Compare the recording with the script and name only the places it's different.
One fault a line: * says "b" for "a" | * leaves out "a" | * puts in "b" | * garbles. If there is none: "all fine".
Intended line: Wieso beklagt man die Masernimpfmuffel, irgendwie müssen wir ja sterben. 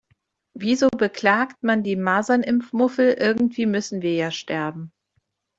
all fine